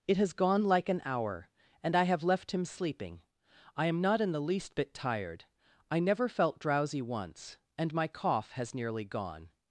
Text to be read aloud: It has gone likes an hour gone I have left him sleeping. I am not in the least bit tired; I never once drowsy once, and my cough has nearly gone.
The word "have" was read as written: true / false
true